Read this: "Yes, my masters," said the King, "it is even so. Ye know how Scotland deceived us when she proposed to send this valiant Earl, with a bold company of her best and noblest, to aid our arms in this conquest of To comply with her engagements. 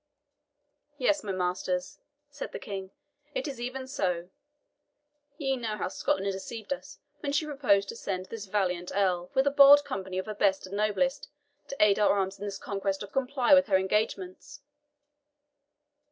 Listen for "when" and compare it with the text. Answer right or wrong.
right